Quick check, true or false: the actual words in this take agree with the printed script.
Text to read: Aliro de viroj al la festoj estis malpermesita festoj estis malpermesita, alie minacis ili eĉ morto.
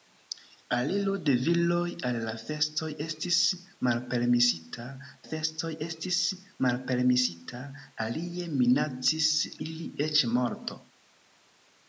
true